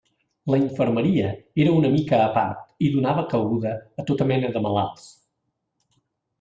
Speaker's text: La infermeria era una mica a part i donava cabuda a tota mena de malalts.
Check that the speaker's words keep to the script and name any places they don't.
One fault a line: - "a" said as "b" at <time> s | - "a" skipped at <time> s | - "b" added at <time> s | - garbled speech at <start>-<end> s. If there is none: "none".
none